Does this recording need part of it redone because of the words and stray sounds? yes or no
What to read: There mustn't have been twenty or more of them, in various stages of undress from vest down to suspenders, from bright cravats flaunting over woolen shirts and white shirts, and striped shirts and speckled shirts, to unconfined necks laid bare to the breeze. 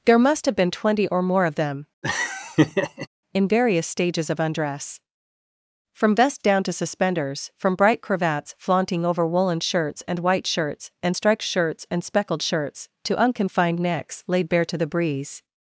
yes